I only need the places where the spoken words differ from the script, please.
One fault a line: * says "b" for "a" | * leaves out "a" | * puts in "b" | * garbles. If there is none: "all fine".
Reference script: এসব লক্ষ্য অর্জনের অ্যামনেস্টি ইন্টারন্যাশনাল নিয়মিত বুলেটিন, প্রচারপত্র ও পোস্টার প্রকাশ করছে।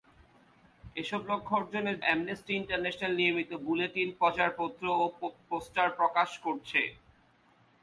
all fine